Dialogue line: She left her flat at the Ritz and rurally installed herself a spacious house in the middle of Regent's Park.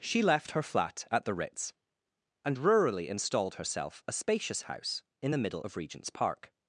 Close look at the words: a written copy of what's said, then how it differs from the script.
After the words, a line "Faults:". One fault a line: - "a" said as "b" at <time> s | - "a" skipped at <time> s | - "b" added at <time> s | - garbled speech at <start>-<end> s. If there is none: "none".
She left her flat at the Ritz and rurally installed herself a spacious house in the middle of Regent's Park.
Faults:
none